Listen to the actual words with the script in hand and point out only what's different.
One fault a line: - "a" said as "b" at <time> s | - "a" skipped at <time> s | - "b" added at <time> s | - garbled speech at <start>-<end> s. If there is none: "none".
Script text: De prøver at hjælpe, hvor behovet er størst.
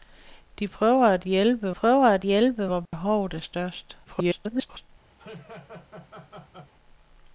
- "prøver at hjælpe" added at 1.7 s
- garbled speech at 4.0-4.9 s